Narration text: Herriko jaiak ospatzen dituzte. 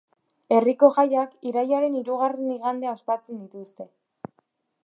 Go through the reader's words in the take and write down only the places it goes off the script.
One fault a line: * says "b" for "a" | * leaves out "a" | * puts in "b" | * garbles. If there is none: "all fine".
* puts in "irailaren hirugarren igandea"